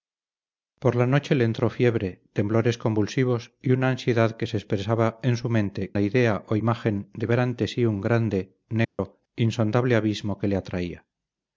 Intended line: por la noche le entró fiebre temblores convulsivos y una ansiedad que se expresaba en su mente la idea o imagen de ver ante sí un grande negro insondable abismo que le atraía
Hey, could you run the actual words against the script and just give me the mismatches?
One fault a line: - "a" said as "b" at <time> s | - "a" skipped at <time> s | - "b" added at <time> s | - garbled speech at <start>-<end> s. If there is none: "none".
none